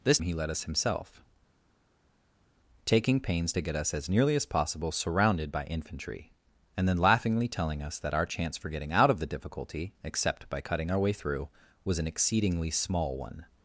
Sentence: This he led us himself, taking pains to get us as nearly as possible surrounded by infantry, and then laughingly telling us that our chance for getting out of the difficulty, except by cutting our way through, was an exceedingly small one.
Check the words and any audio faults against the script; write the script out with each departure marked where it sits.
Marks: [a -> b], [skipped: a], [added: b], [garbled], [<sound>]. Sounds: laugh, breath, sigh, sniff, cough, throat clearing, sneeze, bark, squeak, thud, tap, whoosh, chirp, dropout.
This he led us himself, taking pains to get us as nearly as possible surrounded by infantry, and then laughingly telling us that our chance for getting out of the difficulty, except by cutting our way through, was an exceedingly small one.